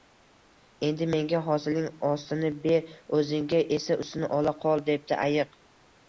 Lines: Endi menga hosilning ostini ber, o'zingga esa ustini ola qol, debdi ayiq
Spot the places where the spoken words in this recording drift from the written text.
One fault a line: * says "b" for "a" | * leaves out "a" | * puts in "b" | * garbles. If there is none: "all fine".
all fine